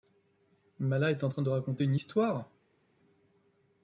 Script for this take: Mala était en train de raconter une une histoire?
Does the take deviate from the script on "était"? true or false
true